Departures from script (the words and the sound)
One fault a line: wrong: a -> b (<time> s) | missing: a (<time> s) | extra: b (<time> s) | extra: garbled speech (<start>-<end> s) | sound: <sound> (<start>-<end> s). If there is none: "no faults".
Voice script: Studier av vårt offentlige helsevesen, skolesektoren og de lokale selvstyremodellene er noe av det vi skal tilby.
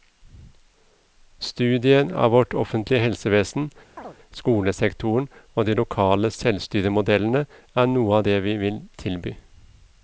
sound: chirp (4.0-4.2 s)
wrong: skal -> vil (8.6 s)